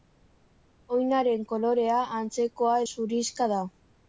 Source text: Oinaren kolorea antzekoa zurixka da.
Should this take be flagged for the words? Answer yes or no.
no